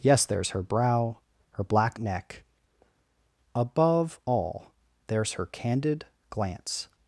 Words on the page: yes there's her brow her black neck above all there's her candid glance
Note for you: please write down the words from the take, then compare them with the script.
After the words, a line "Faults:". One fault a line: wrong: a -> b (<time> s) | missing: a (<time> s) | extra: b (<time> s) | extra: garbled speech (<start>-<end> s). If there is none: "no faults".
yes there's her brow her black neck above all there's her candid glance
Faults:
no faults